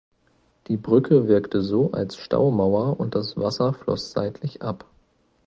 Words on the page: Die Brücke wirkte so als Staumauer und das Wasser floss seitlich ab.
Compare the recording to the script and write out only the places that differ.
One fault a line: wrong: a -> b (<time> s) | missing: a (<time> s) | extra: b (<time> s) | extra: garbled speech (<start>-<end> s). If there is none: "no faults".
no faults